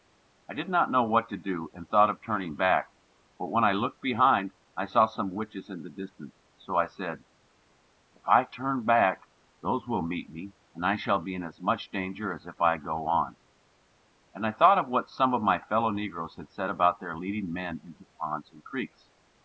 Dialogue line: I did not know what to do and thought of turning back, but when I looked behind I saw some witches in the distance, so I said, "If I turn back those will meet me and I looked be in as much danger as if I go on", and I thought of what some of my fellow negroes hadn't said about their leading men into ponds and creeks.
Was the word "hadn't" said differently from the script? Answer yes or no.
yes